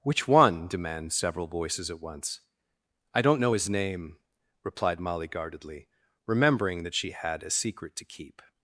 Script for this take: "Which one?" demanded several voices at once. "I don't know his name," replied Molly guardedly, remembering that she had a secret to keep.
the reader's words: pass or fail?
fail